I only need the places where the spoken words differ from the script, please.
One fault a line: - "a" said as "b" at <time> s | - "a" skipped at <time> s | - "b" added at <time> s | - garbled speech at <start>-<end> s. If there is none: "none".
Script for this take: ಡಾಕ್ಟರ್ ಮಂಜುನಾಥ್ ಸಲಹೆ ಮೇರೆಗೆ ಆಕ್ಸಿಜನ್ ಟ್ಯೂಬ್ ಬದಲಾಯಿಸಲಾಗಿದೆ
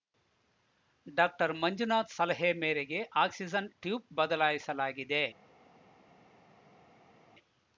none